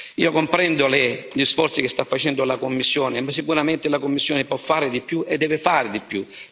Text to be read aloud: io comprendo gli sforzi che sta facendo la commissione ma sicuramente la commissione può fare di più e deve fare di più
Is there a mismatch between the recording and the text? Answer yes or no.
no